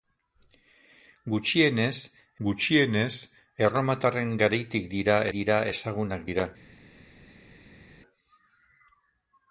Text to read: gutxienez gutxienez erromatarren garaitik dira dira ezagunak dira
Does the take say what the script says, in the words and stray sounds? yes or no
yes